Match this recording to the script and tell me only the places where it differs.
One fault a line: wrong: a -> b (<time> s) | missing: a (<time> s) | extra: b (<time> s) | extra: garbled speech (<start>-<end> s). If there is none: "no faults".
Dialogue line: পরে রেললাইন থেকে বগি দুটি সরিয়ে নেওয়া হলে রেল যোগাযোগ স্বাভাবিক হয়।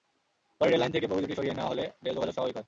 no faults